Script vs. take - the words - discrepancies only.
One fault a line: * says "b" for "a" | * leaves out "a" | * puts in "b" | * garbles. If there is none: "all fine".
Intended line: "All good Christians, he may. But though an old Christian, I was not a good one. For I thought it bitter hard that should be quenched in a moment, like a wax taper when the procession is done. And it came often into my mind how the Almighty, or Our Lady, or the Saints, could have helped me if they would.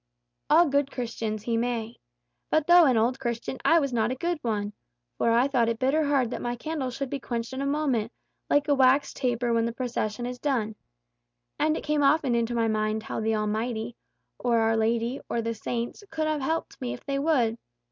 * puts in "my candle"